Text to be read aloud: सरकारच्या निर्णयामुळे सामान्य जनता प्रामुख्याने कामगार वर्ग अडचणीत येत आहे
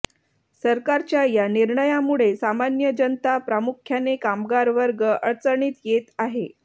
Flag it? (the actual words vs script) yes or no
yes